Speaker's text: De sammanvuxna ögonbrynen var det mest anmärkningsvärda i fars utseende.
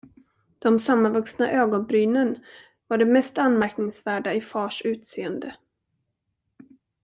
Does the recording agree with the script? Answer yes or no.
yes